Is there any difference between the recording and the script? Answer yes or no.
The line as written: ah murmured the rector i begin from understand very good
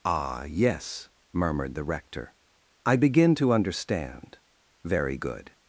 yes